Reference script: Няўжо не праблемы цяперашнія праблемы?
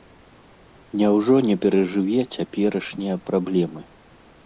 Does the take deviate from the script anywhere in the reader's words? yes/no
yes